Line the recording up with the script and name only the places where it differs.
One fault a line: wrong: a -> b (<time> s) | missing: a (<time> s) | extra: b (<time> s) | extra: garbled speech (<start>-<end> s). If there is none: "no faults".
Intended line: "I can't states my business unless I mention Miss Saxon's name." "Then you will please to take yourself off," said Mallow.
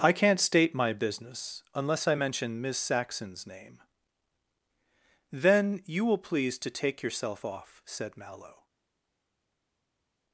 wrong: states -> state (0.4 s)